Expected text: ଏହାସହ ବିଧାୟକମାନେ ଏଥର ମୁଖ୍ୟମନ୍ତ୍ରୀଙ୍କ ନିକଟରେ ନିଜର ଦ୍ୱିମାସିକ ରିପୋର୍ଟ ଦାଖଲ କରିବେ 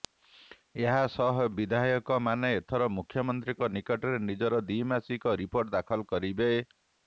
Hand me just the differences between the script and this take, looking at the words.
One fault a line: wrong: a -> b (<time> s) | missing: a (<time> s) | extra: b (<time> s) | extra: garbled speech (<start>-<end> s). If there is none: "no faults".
no faults